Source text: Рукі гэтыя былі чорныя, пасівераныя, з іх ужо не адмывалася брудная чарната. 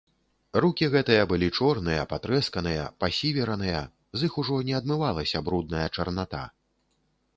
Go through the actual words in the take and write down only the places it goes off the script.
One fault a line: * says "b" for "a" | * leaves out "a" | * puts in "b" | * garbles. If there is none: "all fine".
* puts in "патрэсканыя"